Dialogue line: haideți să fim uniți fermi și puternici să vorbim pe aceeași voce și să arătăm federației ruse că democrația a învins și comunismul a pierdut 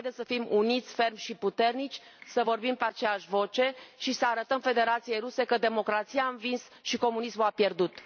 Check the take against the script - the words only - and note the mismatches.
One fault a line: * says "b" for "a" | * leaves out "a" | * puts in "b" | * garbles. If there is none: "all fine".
all fine